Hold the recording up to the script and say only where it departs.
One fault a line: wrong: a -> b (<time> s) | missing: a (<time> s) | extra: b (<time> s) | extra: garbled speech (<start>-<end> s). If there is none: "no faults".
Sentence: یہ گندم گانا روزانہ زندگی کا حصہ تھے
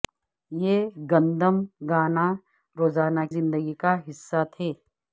no faults